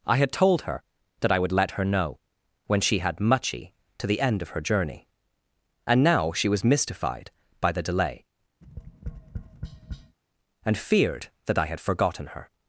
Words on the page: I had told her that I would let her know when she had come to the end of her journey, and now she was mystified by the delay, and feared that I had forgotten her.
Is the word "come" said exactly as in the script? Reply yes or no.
no